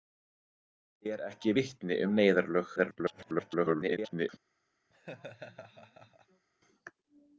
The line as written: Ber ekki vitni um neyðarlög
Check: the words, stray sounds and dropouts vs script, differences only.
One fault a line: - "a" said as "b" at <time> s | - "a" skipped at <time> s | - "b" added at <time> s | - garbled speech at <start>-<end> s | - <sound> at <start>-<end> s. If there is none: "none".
- garbled speech at 2.8-4.3 s
- laugh at 4.9-6.5 s